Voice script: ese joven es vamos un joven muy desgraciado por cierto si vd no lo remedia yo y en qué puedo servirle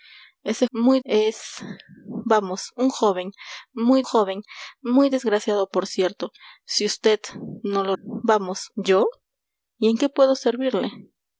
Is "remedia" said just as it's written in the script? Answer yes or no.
no